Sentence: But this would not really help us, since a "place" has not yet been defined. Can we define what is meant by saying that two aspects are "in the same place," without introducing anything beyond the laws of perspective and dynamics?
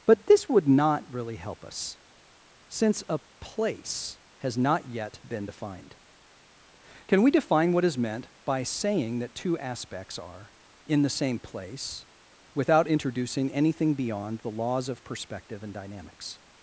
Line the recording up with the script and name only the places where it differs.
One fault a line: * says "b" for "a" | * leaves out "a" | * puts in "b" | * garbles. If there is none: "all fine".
all fine